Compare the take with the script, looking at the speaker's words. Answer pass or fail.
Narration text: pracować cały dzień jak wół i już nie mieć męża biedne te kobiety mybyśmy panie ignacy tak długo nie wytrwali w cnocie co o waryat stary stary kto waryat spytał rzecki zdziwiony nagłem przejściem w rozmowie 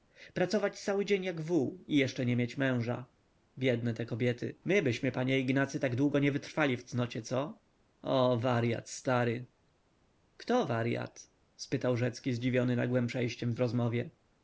fail